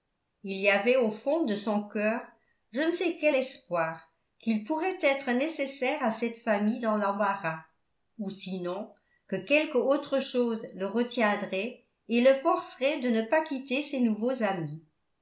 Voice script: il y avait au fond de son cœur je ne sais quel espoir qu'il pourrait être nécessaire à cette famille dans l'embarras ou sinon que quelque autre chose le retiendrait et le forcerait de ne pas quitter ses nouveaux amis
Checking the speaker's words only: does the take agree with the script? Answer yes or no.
yes